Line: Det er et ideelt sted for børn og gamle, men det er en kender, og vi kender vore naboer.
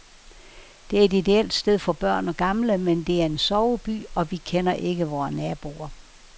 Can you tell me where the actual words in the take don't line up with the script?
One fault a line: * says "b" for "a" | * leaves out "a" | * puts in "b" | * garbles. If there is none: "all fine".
* says "soveby" for "kender"
* puts in "ikke"